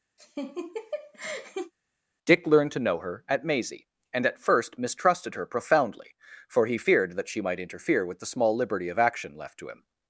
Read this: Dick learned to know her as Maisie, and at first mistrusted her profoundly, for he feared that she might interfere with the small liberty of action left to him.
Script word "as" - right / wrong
wrong